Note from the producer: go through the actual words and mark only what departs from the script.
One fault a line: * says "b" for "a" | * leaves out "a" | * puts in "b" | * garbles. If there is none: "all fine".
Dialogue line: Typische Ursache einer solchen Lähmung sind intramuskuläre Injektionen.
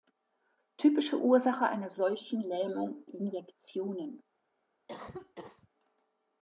* leaves out "sind intramuskuläre"